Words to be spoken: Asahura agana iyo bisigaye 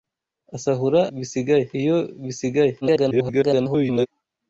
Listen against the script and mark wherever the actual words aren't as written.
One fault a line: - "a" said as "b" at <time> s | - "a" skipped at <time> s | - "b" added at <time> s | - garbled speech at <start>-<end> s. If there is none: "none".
- "agana" said as "bisigaye" at 1.2 s
- garbled speech at 2.8-4.1 s